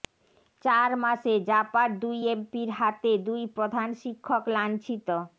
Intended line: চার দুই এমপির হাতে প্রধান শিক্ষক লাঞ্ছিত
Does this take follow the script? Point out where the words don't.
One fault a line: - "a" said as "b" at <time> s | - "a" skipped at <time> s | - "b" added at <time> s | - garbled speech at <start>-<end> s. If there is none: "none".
- "মাসে জাপার" added at 1.0 s
- "দুই" added at 3.3 s